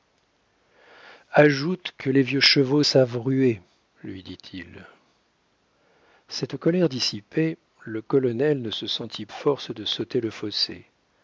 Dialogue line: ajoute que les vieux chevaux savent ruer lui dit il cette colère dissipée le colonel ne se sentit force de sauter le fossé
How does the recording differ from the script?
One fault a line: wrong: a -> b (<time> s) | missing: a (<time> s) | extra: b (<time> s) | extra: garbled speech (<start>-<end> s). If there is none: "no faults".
no faults